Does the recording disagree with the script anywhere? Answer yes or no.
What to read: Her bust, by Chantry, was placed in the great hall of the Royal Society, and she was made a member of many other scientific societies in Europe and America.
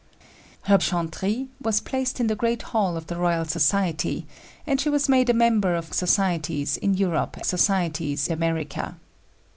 yes